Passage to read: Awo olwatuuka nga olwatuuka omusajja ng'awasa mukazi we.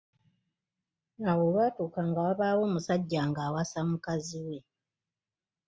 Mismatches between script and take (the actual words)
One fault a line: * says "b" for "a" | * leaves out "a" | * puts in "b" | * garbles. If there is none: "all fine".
* says "wabaawo" for "olwatuuka"